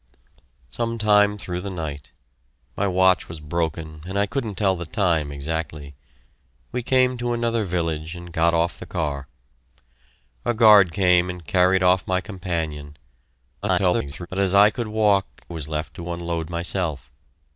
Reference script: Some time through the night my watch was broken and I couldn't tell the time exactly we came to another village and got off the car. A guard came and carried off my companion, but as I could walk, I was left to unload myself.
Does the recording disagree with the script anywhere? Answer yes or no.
yes